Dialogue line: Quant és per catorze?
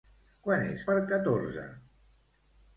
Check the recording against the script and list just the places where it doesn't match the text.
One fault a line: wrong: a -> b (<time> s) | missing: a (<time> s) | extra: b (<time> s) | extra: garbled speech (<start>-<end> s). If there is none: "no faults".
no faults